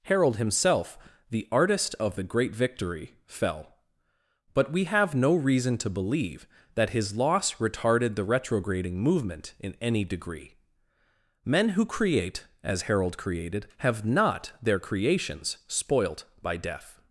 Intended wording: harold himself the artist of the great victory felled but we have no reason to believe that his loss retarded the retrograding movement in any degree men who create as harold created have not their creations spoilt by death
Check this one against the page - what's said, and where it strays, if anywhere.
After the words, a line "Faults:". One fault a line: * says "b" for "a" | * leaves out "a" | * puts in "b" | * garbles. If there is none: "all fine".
harold himself the artist of the great victory fell but we have no reason to believe that his loss retarded the retrograding movement in any degree men who create as harold created have not their creations spoilt by death
Faults:
* says "fell" for "felled"